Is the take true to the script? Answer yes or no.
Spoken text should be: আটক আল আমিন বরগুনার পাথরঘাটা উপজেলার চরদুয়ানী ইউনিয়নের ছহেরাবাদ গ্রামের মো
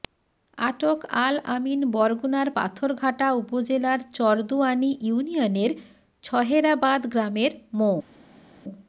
yes